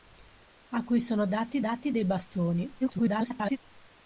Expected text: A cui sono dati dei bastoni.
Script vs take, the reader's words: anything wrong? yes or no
yes